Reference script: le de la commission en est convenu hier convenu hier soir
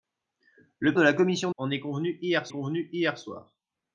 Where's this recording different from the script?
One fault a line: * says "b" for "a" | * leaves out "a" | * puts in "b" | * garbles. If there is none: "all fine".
all fine